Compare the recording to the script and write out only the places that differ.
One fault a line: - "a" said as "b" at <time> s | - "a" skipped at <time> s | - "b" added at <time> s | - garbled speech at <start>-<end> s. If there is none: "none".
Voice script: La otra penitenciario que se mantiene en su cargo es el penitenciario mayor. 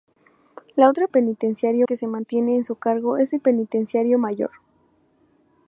none